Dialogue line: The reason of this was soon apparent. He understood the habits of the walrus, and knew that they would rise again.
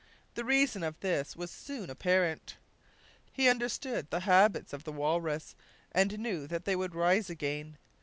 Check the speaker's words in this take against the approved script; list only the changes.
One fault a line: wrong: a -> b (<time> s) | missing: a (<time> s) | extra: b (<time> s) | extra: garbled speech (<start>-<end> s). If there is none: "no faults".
no faults